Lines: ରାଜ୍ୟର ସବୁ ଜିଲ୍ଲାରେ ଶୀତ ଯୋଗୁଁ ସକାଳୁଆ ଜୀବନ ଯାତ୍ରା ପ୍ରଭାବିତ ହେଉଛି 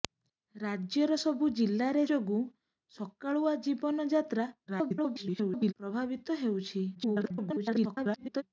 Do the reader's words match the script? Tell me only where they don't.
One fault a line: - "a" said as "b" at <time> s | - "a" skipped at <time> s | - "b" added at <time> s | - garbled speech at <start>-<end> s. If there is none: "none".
- "ଶୀତ" skipped at 2.0 s
- garbled speech at 4.7-5.7 s
- garbled speech at 6.9-8.4 s